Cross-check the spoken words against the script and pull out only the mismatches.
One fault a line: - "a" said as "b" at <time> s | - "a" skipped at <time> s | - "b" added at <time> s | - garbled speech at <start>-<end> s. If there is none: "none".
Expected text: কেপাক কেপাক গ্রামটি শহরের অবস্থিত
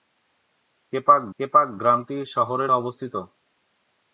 none